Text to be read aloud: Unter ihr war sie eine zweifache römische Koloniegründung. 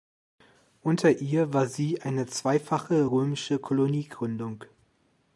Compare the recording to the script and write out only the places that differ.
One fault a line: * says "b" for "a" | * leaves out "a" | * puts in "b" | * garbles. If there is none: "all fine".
all fine